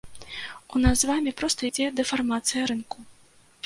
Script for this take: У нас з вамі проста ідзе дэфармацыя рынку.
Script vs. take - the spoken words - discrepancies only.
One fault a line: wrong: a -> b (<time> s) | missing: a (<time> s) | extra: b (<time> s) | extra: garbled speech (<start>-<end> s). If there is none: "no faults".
no faults